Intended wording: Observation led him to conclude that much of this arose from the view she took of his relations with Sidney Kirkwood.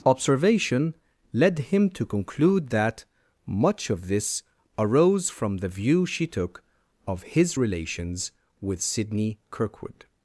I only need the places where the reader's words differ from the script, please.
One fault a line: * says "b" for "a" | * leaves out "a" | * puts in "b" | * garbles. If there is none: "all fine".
all fine